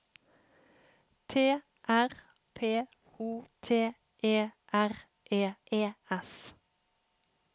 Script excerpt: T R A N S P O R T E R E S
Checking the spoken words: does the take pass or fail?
fail